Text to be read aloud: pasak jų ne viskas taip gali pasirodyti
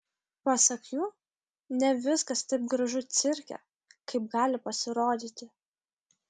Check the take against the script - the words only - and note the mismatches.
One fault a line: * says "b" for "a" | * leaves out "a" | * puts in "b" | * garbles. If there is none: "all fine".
* puts in "gražu cirke kaip"